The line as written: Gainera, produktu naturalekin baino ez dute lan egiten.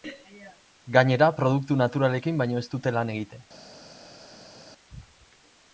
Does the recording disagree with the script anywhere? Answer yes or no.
no